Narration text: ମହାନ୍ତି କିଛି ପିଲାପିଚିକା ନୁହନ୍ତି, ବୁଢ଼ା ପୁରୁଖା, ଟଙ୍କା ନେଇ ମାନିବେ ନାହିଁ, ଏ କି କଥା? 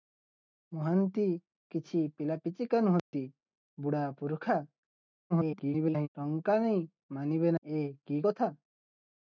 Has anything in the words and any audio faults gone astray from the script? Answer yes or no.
yes